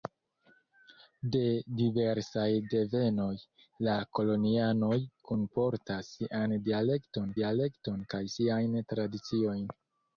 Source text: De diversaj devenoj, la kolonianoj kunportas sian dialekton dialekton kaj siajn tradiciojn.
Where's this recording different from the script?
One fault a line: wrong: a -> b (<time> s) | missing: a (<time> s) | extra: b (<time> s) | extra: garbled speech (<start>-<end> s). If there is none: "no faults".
no faults